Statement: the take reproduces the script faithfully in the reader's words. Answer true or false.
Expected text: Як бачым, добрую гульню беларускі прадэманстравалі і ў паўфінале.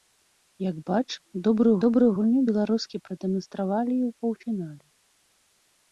false